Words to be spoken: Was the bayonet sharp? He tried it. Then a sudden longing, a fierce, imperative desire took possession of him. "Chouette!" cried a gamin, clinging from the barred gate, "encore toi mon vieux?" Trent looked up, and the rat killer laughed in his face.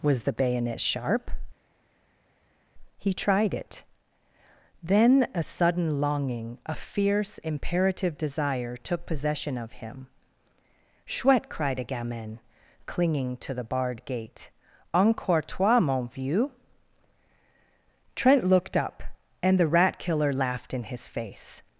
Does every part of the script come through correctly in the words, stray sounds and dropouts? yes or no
no